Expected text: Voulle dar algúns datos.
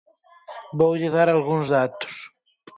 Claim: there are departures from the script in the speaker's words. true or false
false